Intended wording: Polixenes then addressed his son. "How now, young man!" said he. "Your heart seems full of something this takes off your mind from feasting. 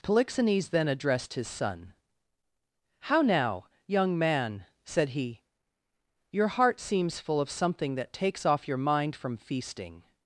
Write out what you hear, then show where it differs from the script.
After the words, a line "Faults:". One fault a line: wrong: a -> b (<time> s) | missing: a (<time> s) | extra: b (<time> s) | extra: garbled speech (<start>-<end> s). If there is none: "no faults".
Polixenes then addressed his son. "How now, young man!" said he. "Your heart seems full of something that takes off your mind from feasting.
Faults:
wrong: this -> that (8.0 s)